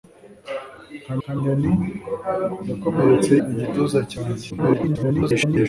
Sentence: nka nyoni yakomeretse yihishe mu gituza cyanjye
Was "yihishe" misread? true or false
true